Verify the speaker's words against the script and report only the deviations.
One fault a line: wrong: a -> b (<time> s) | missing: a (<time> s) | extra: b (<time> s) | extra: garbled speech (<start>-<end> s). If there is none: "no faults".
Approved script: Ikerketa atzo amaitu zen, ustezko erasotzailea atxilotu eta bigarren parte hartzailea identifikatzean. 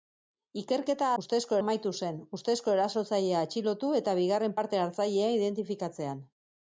wrong: atzo -> ustezko (1.2 s)